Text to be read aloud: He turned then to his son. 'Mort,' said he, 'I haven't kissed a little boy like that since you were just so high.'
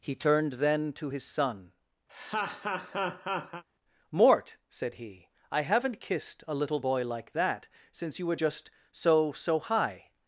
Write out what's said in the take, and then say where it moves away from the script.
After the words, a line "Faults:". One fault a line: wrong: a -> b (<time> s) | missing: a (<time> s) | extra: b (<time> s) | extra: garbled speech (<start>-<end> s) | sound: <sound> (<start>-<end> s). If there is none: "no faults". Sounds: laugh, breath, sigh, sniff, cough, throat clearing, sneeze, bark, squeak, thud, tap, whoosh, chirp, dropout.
He turned then to his son. 'Mort,' said he, 'I haven't kissed a little boy like that since you were just so so high.'
Faults:
sound: laugh (2.1-3.6 s)
extra: so (9.3 s)